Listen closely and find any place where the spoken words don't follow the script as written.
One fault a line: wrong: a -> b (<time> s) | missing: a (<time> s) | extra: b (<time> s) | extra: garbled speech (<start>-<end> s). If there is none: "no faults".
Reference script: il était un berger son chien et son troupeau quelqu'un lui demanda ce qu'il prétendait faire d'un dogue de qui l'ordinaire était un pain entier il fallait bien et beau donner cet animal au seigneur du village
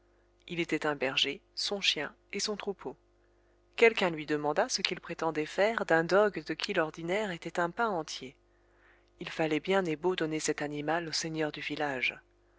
no faults